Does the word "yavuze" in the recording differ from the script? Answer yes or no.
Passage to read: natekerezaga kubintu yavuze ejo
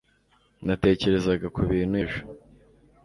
yes